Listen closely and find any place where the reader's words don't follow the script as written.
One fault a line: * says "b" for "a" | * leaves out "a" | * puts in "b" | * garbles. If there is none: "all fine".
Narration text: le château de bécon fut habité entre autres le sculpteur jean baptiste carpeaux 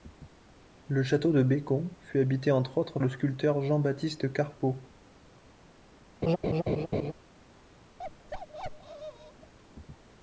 all fine